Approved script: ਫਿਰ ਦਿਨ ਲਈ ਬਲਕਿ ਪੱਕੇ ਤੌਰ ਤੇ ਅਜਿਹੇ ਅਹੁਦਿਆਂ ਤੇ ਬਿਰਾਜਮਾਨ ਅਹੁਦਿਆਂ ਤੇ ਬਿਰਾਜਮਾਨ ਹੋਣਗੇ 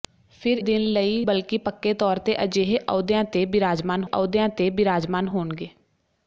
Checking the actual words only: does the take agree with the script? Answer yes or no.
yes